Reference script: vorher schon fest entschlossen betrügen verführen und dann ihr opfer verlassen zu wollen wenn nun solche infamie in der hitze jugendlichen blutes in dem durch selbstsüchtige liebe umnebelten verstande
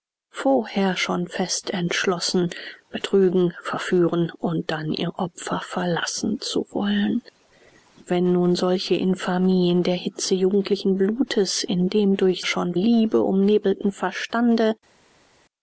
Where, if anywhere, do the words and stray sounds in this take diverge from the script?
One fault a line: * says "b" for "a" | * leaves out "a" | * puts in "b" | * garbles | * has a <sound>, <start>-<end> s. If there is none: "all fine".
* says "schon" for "selbstsüchtige"